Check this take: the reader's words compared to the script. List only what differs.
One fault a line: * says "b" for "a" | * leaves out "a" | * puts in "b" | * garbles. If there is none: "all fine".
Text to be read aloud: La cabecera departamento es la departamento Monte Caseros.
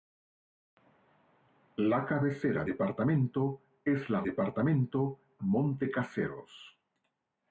all fine